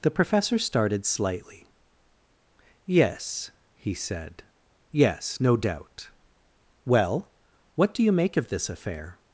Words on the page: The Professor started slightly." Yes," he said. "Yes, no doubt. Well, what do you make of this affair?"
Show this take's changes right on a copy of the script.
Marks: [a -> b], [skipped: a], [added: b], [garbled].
The Professor started slightly." Yes," he said. "Yes, no doubt. Well, what do you make of this affair?"